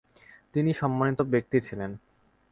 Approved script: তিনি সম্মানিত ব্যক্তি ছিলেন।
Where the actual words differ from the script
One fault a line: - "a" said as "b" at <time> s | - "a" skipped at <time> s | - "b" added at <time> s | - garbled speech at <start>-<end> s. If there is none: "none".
none